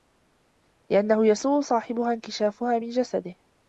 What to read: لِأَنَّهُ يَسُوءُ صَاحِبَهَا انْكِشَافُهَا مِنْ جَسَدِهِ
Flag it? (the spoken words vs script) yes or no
no